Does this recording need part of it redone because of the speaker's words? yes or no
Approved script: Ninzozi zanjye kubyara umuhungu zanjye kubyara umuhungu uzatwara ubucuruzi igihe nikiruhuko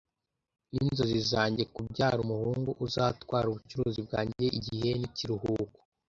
yes